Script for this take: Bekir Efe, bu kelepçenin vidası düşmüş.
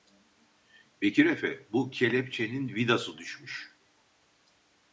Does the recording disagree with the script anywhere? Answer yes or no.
no